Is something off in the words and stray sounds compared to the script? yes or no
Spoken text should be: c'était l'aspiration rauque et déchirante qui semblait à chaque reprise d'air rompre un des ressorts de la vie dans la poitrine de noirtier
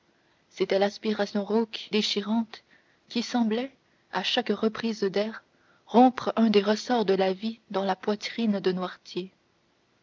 yes